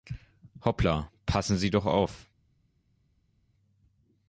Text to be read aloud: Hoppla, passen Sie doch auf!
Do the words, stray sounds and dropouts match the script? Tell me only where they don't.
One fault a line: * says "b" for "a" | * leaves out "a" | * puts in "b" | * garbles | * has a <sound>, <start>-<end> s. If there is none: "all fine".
all fine